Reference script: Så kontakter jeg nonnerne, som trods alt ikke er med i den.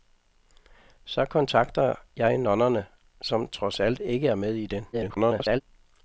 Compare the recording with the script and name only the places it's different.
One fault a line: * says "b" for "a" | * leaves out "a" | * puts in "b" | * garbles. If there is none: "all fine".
* garbles